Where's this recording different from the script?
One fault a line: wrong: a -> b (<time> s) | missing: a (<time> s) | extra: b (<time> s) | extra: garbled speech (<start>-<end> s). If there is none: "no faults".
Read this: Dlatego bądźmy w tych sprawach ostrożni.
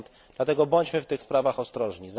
no faults